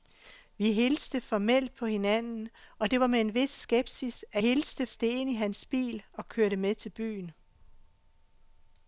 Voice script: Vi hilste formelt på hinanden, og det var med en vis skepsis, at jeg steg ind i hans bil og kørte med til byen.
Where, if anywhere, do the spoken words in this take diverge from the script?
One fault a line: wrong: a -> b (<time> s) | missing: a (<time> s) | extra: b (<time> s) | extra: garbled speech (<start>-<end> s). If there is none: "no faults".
wrong: jeg -> hilste (4.4 s)